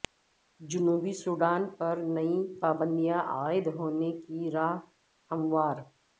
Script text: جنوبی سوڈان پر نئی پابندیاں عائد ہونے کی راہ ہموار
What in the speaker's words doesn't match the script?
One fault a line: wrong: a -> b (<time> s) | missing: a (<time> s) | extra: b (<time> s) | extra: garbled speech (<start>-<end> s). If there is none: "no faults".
no faults